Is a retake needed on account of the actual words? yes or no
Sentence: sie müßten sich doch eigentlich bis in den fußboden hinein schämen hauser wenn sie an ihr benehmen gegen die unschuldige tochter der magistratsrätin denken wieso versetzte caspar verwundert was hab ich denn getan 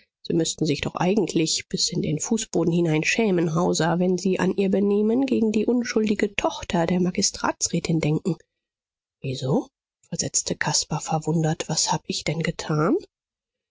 no